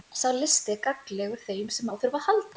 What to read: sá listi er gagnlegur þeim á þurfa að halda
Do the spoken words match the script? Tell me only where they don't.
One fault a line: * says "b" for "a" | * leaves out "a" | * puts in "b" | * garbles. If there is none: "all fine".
* puts in "sem"